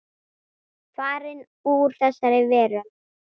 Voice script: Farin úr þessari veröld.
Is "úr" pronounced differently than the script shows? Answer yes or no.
no